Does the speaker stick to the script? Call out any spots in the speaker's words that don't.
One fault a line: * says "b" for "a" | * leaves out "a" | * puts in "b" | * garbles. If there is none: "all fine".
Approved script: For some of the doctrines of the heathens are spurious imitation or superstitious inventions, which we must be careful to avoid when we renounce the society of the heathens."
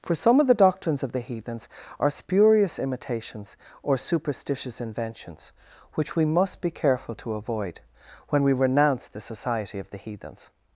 * says "imitations" for "imitation"